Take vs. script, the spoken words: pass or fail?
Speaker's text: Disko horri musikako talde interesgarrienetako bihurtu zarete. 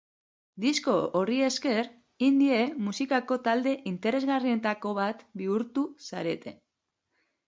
fail